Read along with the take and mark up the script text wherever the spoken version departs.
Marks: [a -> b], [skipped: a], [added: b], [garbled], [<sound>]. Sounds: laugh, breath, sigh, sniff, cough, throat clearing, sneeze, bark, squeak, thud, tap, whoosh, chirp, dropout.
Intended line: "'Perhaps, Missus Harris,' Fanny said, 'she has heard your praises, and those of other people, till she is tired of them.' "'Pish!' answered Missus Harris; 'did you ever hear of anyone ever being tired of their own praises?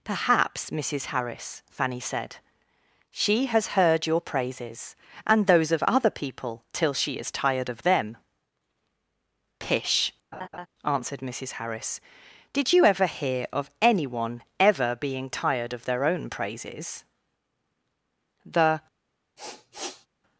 "'Perhaps, Missus Harris,' Fanny said, 'she has heard your praises, and those of other people, till she is tired of them.' "'Pish!' [laugh] answered Missus Harris; 'did you ever hear of anyone ever being tired of their own praises? [added: The] [sniff]